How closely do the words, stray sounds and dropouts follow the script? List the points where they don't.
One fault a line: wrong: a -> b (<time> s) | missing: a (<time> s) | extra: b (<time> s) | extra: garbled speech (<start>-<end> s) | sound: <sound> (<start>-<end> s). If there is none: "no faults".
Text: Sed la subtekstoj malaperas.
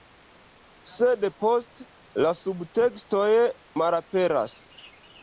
extra: poste (1.4 s)